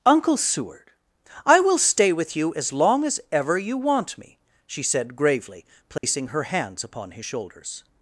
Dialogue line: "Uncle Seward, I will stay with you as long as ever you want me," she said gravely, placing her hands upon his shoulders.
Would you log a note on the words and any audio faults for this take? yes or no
yes